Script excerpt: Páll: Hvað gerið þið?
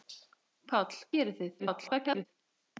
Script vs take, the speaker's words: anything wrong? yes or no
yes